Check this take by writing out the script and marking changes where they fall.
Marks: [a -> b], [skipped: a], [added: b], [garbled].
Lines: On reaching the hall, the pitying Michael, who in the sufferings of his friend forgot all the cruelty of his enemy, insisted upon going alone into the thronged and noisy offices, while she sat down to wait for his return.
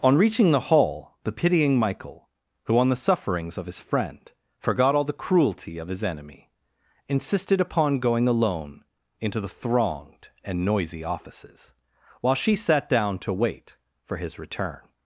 On reaching the hall, the pitying Michael, who [in -> on] the sufferings of his friend forgot all the cruelty of his enemy, insisted upon going alone into the thronged and noisy offices, while she sat down to wait for his return.